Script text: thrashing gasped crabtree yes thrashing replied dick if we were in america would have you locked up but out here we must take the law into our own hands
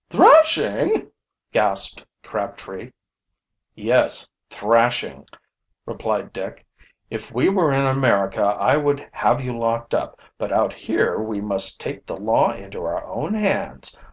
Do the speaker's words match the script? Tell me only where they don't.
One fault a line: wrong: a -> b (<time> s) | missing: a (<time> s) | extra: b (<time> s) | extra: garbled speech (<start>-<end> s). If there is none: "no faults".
extra: i (8.4 s)